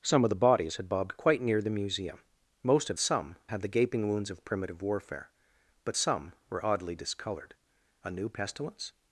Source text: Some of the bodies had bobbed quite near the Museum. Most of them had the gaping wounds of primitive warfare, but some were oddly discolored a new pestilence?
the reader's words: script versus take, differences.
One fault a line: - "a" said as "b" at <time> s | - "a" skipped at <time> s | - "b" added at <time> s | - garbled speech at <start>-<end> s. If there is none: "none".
- "them" said as "some" at 3.0 s